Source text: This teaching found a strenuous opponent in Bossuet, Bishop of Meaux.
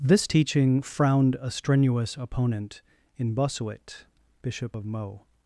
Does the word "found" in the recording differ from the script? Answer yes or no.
yes